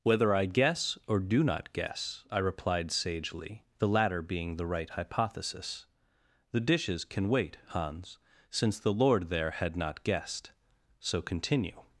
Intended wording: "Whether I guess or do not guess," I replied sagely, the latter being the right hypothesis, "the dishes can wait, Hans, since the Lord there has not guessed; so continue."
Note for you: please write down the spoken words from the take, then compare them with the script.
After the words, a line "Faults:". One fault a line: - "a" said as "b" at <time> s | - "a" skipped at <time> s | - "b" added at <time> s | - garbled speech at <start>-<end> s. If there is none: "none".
"Whether I guess or do not guess," I replied sagely, the latter being the right hypothesis, "the dishes can wait, Hans, since the Lord there had not guessed; so continue."
Faults:
- "has" said as "had" at 9.5 s